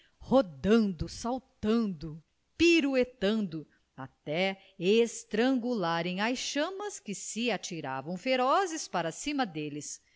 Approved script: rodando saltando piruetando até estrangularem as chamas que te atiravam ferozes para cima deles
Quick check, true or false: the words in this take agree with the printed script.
false